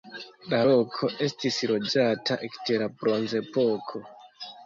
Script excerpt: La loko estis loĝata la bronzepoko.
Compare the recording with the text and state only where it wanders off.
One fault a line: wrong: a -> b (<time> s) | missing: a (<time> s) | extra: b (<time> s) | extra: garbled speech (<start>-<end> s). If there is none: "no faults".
extra: ekde (2.5 s)